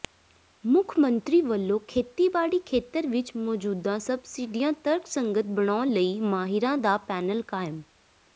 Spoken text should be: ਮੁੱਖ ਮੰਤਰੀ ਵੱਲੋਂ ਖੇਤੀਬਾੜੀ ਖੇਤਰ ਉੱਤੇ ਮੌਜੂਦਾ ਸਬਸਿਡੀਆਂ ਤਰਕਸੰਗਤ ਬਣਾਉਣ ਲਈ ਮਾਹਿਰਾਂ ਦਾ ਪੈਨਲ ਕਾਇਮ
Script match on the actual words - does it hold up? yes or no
no